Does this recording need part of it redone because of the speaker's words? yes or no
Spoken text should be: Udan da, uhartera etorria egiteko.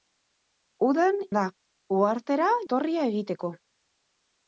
no